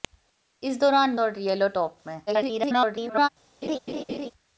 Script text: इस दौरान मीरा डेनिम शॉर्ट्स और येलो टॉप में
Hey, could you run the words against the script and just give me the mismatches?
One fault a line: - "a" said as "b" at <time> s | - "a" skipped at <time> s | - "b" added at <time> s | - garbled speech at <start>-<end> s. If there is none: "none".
- "मीरा डेनिम शॉर्ट्स" skipped at 1.1 s
- garbled speech at 2.3-3.3 s